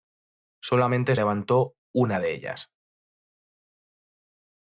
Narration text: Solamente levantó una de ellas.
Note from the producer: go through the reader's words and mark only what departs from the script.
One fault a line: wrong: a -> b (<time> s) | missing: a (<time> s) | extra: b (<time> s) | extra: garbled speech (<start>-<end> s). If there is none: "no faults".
no faults